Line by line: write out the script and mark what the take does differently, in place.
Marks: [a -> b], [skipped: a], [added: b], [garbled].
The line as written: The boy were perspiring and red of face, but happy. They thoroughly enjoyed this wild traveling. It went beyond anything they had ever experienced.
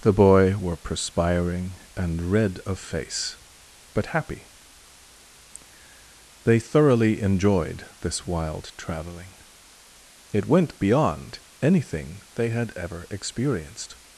The boy were perspiring and red of face, but happy. They thoroughly enjoyed this wild traveling. It went beyond anything they had ever experienced.